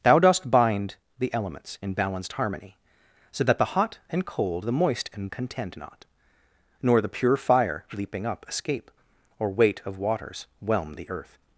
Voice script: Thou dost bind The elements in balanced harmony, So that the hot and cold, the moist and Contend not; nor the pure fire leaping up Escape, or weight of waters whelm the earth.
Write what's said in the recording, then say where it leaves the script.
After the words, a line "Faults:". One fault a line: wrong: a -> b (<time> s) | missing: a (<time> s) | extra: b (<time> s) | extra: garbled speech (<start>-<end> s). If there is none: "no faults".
Thou dost bind The elements in balanced harmony, So that the hot and cold, the moist and Contend not; nor the pure fire leaping up Escape, or weight of waters whelm the earth.
Faults:
no faults